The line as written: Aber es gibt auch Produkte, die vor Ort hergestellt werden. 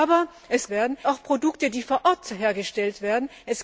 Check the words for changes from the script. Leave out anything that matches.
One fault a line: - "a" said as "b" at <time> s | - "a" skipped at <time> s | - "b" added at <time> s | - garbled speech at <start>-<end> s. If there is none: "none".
- "gibt" said as "werden" at 0.7 s